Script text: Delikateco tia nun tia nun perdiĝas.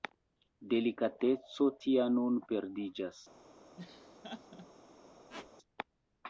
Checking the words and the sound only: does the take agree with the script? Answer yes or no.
no